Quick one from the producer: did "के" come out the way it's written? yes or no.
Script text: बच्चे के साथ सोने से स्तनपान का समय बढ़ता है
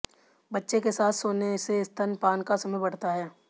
yes